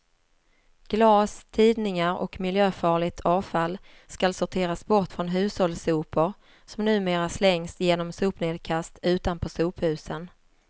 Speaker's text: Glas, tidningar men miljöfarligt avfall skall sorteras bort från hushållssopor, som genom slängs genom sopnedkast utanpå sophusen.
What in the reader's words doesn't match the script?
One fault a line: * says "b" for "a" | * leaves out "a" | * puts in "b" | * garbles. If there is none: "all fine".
* says "och" for "men"
* says "numera" for "genom"